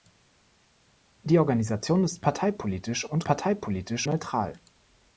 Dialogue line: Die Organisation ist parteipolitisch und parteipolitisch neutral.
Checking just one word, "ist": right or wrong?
right